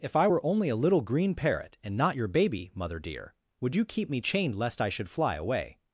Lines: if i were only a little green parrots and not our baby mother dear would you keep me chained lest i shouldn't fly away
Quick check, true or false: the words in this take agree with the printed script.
false